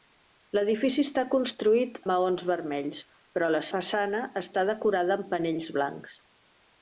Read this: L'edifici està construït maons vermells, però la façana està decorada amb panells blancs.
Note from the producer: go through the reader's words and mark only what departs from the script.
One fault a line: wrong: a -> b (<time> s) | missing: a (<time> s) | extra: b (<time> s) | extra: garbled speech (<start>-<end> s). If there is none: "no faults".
no faults